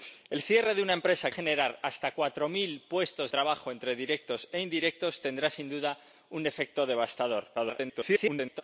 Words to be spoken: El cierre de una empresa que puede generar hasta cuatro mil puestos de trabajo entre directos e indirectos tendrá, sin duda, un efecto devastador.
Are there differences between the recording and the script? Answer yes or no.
yes